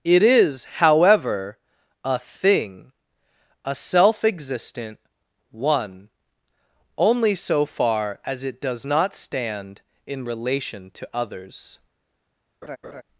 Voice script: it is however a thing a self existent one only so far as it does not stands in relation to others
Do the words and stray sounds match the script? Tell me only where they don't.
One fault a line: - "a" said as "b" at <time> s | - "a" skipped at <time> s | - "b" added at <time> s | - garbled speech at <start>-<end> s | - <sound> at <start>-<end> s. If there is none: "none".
- "stands" said as "stand" at 9.1 s
- laugh at 12.6-13.0 s